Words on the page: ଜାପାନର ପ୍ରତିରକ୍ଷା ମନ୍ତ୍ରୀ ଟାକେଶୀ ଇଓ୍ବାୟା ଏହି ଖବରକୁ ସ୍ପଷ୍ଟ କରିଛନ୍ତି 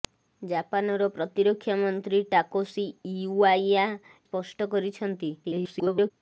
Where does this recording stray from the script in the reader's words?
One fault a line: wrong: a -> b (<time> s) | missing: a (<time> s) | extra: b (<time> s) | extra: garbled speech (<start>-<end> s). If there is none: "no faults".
missing: ଏହି ଖବରକୁ (3.9 s)
extra: garbled speech (5.4-6.1 s)